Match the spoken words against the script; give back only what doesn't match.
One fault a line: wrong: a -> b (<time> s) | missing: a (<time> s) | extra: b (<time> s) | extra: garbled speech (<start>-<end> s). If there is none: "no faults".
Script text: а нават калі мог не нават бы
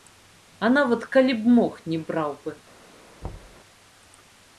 extra: б (1.4 s)
wrong: нават -> браў (2.1 s)